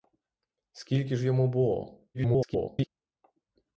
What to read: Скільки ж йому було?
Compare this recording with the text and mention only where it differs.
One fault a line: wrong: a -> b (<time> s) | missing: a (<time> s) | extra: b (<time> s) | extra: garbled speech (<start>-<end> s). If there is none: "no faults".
extra: garbled speech (2.1-2.9 s)